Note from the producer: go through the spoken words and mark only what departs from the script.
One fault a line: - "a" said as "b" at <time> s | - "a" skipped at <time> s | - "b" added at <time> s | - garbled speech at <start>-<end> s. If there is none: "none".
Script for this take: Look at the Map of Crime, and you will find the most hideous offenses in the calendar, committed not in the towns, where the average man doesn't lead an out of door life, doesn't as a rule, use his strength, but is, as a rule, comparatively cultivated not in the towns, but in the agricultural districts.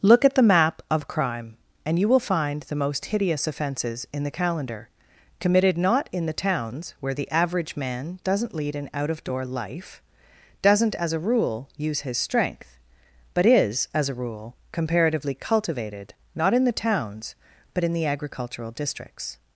none